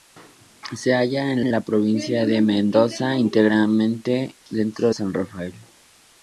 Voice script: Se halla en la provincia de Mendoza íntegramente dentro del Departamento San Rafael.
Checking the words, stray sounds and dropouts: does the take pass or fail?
fail